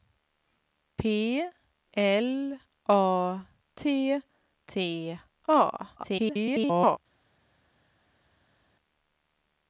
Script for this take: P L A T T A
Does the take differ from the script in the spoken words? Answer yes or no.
yes